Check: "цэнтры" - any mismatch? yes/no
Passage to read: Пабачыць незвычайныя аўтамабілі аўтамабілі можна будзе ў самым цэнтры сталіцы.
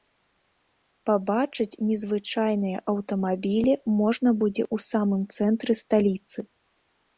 no